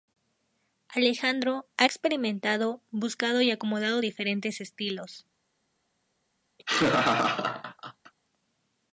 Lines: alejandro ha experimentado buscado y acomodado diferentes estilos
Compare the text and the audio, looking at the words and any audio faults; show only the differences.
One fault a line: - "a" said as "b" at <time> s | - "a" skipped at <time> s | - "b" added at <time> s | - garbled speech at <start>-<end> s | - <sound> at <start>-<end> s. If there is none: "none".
- laugh at 6.6-8.1 s